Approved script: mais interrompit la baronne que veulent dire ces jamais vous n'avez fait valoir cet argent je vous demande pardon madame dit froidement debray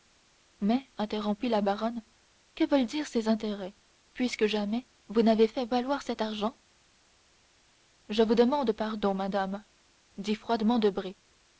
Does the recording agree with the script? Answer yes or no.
no